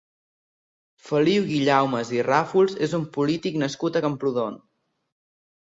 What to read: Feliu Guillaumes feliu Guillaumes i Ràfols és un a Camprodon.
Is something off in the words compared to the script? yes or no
yes